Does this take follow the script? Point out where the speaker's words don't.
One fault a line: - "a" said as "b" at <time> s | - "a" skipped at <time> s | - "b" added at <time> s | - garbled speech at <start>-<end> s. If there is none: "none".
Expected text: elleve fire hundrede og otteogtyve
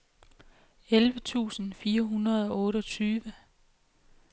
- "tusind" added at 1.2 s